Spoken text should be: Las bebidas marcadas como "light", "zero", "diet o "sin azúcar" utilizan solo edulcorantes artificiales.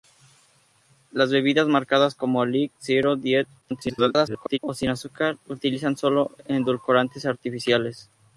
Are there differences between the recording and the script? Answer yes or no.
yes